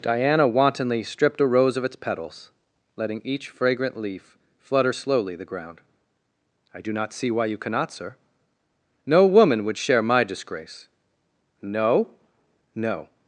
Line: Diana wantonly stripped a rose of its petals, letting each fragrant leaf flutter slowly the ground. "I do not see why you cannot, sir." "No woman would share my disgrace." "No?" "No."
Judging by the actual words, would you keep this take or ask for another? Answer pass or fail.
pass